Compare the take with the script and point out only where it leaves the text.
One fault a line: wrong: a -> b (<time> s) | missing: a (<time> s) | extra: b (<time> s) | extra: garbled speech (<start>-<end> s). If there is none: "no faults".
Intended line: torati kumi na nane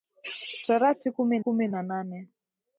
extra: kumi (1.4 s)